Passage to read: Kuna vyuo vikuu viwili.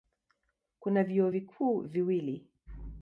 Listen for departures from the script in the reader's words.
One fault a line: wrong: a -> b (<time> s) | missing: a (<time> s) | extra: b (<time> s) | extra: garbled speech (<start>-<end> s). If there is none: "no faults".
no faults